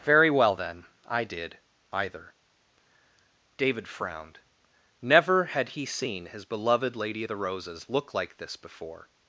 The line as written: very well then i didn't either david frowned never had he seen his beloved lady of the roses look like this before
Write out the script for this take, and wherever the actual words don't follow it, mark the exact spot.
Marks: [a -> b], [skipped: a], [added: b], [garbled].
very well then i [didn't -> did] either david frowned never had he seen his beloved lady of the roses look like this before